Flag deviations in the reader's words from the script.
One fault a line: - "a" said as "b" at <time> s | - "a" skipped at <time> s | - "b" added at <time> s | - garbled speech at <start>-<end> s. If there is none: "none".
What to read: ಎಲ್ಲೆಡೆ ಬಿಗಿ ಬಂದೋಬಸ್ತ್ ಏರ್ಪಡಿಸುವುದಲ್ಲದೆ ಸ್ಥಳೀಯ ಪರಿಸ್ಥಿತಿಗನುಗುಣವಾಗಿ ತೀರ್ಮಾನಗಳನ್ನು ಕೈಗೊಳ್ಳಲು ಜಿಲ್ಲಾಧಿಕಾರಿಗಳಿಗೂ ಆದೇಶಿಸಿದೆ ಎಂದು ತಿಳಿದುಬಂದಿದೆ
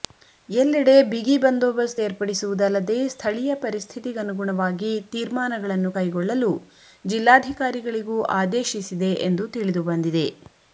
none